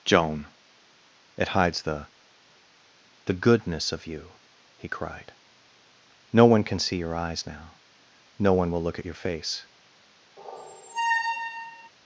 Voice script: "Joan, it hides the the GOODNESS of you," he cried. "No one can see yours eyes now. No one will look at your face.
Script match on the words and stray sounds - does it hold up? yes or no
no